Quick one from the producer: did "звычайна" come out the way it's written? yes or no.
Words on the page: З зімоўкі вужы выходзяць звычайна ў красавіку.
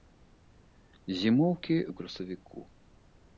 no